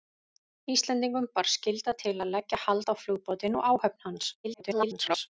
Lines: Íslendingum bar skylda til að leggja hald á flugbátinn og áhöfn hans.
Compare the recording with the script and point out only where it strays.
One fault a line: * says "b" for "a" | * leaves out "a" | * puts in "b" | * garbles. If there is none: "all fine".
* garbles